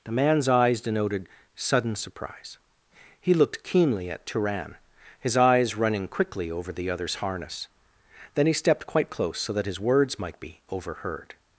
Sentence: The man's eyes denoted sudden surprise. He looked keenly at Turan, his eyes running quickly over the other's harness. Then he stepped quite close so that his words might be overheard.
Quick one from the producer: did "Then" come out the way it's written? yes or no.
yes